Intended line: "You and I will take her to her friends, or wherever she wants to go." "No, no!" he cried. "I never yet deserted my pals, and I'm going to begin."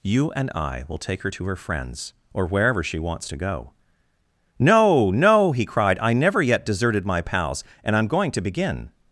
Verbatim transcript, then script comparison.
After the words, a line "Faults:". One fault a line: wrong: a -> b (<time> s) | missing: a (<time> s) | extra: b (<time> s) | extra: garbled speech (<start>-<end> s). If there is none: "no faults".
"You and I will take her to her friends, or wherever she wants to go." "No, no!" he cried. "I never yet deserted my pals, and I'm going to begin."
Faults:
no faults